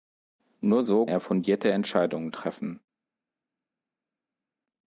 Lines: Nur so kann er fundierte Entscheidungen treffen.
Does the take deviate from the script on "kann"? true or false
true